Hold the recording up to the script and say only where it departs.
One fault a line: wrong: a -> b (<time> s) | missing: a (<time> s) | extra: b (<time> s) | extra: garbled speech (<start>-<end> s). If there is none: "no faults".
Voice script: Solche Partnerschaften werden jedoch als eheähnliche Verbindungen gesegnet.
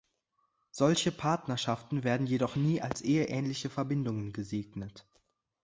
extra: nie (2.5 s)